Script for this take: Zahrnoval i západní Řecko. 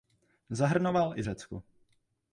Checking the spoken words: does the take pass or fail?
fail